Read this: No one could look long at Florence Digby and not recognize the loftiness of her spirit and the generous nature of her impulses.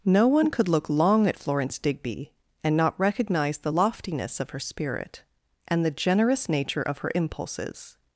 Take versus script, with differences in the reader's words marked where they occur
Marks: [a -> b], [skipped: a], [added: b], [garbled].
No one could look long at Florence Digby and not recognize the loftiness of her spirit and the generous nature of her impulses.